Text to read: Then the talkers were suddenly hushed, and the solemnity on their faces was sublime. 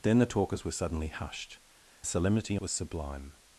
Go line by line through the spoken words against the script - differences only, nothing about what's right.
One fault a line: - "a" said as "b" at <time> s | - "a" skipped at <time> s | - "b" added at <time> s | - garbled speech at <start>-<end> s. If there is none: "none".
- "and" skipped at 1.6 s
- "on their faces" skipped at 2.6 s